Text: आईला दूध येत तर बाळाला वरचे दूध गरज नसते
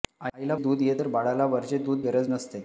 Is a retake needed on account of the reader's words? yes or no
no